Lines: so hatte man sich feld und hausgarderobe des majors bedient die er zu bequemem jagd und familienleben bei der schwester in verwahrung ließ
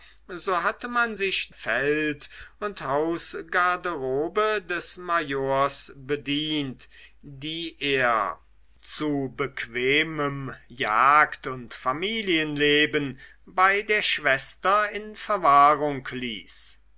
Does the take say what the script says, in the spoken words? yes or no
yes